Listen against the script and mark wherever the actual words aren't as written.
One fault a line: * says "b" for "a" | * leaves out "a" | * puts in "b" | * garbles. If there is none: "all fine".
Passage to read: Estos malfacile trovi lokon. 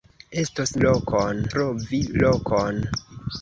* says "lokon" for "malfacile"